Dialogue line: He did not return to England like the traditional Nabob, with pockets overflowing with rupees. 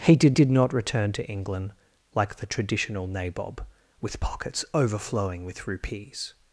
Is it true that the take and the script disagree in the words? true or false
true